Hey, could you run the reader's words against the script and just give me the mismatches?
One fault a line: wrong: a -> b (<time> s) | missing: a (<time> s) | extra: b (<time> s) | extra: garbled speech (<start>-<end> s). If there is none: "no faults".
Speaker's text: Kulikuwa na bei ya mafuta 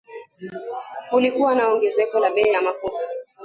extra: ongezeko la (1.7 s)